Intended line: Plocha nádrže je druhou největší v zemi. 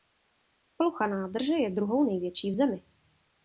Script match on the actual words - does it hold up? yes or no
yes